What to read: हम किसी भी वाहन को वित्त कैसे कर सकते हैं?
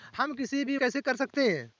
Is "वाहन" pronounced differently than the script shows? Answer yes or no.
yes